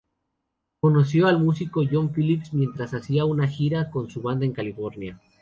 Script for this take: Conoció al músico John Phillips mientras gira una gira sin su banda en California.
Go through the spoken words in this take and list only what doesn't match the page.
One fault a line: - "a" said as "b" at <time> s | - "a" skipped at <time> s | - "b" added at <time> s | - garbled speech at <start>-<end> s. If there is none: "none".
- "gira" said as "hacía" at 3.0 s
- "sin" said as "con" at 3.9 s